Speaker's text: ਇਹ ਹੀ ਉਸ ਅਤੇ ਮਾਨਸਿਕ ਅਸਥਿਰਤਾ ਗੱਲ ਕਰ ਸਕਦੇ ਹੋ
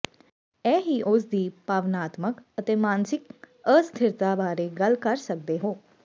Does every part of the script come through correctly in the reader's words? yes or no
no